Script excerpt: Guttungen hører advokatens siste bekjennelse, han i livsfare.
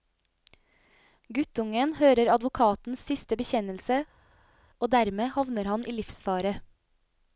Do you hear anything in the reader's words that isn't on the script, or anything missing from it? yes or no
yes